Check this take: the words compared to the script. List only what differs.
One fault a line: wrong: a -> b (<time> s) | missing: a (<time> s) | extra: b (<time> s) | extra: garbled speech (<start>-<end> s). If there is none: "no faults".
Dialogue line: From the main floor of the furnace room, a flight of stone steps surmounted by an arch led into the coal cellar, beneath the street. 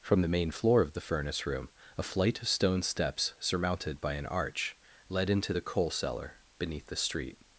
no faults